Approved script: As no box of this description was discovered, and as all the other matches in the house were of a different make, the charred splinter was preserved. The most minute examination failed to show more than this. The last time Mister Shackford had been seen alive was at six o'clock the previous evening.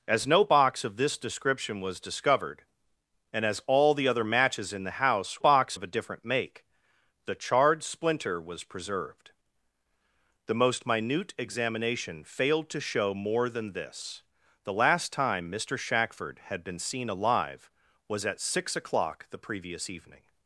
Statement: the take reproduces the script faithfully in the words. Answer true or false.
false